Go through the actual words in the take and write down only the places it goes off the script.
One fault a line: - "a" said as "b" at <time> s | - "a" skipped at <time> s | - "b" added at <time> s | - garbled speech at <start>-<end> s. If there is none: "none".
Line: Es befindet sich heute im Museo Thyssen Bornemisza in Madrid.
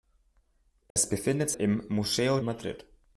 - "sich heute" skipped at 1.5 s
- "Thyssen Bornemisza in" skipped at 2.4 s